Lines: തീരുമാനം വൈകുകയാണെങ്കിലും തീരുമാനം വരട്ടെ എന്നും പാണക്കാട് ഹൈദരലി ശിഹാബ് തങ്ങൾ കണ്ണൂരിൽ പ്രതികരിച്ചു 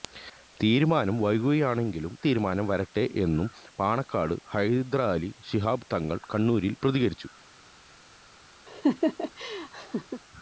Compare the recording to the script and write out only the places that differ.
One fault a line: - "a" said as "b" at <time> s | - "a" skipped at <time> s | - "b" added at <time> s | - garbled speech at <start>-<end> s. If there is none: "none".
none